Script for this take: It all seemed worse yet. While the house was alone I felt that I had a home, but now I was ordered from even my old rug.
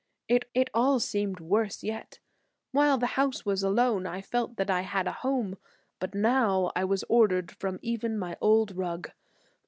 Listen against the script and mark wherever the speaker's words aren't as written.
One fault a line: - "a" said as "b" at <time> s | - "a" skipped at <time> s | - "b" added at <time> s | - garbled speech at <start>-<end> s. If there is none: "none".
- "it" added at 0.5 s